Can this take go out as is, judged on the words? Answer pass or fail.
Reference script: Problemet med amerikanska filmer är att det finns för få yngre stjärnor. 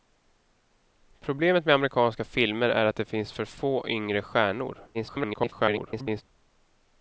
fail